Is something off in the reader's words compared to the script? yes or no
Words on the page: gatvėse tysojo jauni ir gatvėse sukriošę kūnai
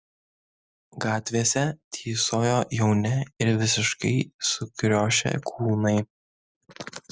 yes